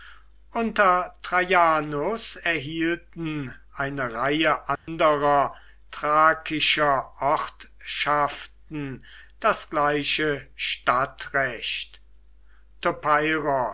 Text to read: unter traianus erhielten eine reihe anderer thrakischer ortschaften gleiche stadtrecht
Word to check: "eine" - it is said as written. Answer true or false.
true